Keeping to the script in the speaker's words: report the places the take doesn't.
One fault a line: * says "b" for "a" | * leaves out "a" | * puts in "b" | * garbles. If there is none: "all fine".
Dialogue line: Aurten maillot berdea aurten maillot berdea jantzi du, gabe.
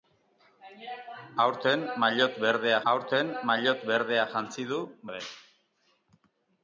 all fine